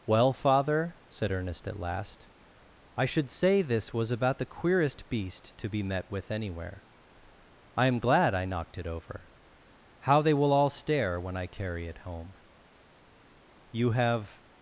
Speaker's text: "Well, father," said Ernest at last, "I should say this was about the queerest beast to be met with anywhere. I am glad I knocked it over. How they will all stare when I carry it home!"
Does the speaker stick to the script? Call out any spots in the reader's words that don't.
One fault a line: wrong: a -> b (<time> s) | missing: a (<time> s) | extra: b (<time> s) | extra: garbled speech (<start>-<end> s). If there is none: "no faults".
extra: You have (13.7 s)